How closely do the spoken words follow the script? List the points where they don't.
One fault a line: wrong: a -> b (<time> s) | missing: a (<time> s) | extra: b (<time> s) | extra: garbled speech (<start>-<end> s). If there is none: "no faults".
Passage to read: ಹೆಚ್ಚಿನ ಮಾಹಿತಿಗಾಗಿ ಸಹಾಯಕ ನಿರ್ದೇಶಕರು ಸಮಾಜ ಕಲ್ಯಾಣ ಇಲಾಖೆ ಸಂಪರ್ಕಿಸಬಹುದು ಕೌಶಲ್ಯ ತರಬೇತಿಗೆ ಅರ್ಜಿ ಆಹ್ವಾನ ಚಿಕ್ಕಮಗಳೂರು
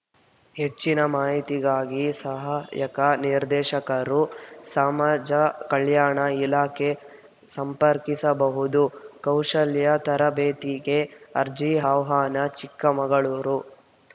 no faults